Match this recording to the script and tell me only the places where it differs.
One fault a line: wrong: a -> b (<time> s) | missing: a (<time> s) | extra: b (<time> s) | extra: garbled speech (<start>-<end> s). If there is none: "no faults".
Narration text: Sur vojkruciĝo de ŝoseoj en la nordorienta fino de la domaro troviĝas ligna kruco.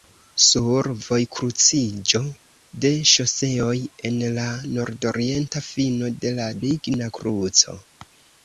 missing: domaro troviĝas (6.5 s)